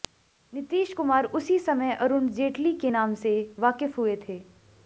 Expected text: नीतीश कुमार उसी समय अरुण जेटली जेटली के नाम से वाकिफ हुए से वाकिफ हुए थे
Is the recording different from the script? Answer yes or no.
yes